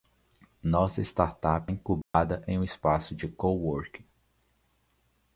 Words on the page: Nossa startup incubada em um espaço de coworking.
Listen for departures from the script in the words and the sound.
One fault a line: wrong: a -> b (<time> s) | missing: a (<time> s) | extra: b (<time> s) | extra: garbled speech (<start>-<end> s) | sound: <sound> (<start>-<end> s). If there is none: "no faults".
sound: dropout (2.0-2.1 s)